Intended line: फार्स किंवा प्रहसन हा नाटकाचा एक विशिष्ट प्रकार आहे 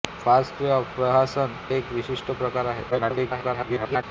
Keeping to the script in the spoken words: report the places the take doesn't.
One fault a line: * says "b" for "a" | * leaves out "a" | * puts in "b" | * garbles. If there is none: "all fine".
* leaves out "हा नाटकाचा"
* garbles